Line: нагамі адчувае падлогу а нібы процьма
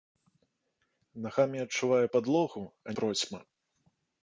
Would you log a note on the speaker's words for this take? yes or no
yes